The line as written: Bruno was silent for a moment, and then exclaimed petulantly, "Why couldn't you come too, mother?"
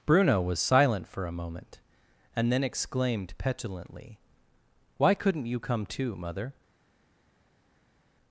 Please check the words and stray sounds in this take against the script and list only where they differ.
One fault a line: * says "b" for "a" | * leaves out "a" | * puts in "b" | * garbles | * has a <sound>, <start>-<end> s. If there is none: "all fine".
all fine